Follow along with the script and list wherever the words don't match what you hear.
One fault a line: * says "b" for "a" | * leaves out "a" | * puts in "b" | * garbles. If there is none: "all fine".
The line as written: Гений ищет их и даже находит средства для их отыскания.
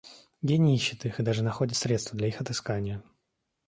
all fine